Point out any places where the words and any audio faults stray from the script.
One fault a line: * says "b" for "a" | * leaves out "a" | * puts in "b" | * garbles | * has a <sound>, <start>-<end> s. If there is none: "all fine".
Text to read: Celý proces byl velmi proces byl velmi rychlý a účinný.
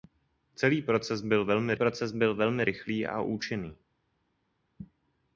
all fine